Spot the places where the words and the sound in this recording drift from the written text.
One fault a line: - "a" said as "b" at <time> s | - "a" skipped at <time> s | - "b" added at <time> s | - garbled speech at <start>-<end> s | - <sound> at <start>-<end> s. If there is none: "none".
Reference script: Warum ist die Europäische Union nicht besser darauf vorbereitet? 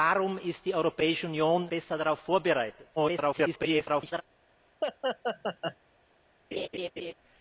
- "nicht" skipped at 1.7 s
- garbled speech at 3.0-4.2 s
- laugh at 4.8-5.8 s
- laugh at 6.5-7.1 s